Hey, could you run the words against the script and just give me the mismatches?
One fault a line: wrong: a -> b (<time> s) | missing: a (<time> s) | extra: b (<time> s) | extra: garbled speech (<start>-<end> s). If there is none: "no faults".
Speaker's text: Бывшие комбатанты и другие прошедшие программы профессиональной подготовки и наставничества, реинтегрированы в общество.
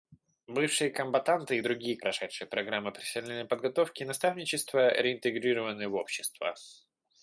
no faults